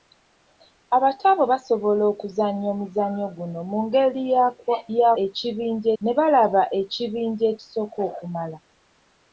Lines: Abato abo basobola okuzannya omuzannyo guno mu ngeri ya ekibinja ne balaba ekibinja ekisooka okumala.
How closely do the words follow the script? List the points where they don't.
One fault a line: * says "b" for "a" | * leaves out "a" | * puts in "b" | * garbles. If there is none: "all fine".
all fine